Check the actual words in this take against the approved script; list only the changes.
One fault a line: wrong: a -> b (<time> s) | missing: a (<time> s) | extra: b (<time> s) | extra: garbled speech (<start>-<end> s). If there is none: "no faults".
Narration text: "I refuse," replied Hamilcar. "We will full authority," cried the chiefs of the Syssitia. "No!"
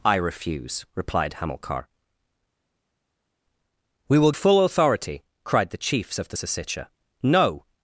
no faults